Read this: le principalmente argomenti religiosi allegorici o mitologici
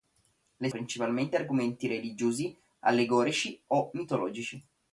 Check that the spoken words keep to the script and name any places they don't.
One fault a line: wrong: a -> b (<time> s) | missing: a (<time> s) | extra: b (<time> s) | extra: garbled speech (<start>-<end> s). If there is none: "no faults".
no faults